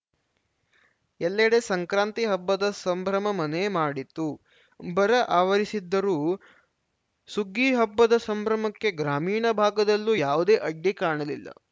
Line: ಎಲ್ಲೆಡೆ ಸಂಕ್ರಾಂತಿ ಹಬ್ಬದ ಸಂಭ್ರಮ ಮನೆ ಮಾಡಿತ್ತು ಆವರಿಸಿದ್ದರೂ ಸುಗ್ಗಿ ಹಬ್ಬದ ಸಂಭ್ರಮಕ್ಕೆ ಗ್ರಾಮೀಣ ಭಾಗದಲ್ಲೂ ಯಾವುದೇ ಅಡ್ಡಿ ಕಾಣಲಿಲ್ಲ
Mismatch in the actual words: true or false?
true